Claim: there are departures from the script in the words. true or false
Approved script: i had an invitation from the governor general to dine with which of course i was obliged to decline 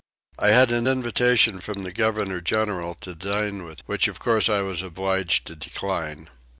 false